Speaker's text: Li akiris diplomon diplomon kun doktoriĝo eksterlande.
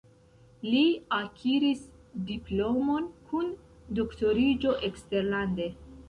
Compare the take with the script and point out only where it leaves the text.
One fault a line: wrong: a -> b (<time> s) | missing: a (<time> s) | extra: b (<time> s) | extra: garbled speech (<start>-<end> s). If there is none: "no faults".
missing: diplomon (3.1 s)